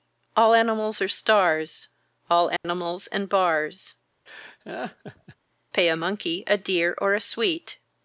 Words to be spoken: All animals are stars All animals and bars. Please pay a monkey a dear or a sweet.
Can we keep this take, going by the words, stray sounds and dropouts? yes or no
no